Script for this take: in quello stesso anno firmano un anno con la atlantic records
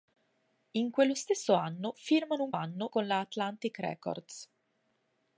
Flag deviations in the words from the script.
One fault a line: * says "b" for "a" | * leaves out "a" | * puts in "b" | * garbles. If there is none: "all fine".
all fine